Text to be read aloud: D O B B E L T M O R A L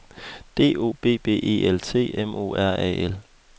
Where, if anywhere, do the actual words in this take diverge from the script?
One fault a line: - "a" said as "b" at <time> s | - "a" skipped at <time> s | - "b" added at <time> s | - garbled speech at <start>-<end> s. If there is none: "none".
none